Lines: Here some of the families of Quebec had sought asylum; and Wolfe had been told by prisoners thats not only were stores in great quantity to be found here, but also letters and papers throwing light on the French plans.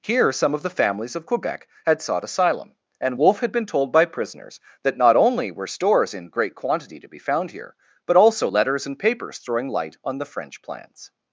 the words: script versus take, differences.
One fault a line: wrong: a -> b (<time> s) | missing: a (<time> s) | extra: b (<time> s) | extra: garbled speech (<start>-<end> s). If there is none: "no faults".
wrong: thats -> that (4.8 s)